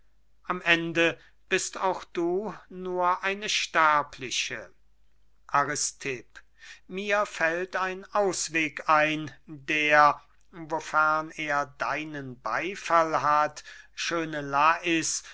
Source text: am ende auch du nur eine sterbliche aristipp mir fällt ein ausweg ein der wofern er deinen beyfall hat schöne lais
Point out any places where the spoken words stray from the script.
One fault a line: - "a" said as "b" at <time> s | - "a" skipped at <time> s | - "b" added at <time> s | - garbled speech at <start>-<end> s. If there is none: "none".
- "bist" added at 1.5 s